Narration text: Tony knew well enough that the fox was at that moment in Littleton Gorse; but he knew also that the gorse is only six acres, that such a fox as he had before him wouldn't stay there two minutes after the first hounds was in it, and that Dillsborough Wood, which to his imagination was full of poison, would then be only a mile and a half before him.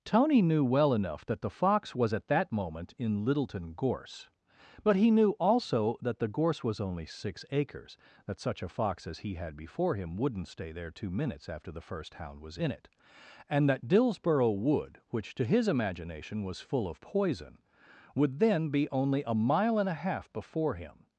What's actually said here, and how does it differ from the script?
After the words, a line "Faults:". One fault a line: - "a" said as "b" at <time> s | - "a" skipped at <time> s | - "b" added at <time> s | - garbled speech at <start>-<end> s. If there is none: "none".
Tony knew well enough that the fox was at that moment in Littleton Gorse; but he knew also that the gorse was only six acres, that such a fox as he had before him wouldn't stay there two minutes after the first hound was in it, and that Dillsborough Wood, which to his imagination was full of poison, would then be only a mile and a half before him.
Faults:
- "is" said as "was" at 6.6 s
- "hounds" said as "hound" at 12.2 s